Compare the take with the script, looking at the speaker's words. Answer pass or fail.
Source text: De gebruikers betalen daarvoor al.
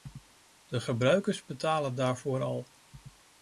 pass